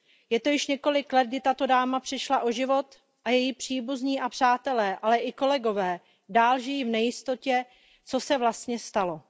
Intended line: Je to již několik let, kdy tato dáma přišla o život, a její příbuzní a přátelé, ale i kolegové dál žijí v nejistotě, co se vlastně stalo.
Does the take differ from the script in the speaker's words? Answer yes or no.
no